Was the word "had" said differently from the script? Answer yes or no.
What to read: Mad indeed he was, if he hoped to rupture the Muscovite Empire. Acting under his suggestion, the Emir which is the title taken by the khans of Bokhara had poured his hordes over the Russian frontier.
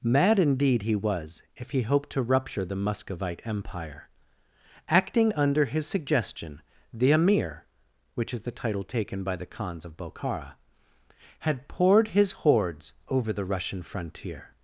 no